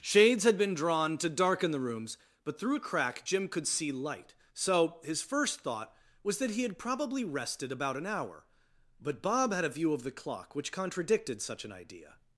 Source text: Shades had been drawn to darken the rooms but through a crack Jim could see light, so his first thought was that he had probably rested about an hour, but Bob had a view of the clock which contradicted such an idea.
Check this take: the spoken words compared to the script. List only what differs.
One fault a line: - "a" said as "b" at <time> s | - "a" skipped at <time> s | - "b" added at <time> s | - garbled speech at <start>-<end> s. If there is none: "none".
none